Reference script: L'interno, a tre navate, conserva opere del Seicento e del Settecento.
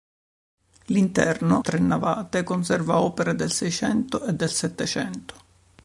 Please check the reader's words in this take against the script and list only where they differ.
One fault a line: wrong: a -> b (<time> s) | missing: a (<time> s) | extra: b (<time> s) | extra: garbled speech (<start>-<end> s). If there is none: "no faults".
missing: a (1.6 s)